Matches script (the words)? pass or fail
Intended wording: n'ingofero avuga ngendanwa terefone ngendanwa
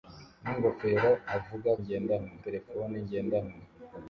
pass